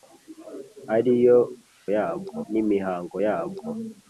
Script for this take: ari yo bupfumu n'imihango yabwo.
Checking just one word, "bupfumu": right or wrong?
wrong